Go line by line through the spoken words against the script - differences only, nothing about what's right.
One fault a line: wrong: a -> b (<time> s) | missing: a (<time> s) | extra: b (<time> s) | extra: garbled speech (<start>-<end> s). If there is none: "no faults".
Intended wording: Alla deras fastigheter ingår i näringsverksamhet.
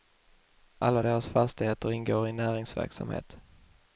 no faults